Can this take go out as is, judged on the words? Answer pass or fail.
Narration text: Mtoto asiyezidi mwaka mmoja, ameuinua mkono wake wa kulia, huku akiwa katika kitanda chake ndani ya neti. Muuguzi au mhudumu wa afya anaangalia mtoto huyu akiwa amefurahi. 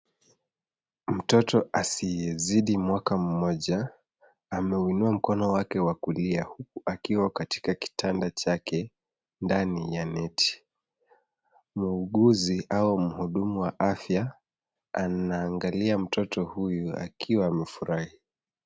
pass